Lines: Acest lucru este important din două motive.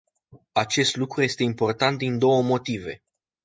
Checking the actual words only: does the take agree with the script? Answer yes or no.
yes